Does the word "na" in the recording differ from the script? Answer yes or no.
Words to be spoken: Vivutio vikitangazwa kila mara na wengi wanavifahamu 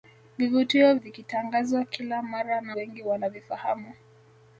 no